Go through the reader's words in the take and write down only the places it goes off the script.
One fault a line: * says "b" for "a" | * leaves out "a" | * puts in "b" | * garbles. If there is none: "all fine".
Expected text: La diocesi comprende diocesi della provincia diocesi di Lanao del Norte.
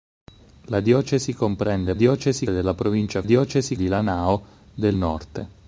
all fine